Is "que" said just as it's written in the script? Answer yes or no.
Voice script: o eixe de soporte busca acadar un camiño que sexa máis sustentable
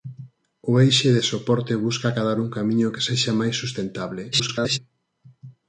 yes